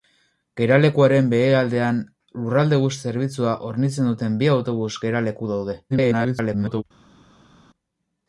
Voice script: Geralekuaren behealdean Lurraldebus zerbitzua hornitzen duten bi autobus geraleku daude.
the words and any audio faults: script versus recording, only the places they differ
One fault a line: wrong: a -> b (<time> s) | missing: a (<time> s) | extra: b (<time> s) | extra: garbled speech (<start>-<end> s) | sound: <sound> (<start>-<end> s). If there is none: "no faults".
extra: garbled speech (5.9-6.8 s)